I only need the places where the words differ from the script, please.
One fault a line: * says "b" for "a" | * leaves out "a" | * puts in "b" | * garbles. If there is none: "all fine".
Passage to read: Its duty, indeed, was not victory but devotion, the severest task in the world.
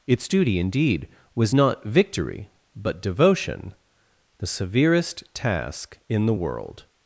all fine